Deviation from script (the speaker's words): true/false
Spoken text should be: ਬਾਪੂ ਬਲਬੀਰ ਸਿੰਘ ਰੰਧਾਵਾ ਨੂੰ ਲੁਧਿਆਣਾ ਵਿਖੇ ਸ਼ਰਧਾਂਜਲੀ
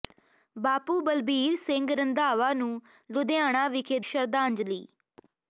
false